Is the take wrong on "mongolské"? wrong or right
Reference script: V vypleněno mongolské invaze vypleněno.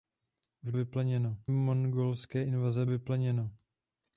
right